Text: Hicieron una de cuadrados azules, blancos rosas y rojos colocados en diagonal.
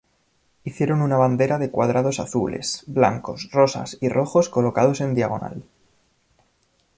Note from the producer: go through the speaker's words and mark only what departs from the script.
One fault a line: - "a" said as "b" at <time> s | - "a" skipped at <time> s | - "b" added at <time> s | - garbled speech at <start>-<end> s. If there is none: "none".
- "bandera" added at 1.1 s